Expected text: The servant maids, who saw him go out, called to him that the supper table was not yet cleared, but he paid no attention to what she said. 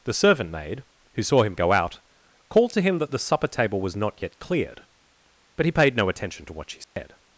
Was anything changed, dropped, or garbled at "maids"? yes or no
yes